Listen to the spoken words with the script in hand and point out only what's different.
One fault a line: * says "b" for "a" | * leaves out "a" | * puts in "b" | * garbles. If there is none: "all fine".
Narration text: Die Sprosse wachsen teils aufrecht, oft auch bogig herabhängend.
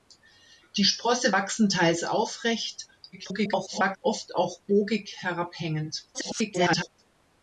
* garbles
* garbles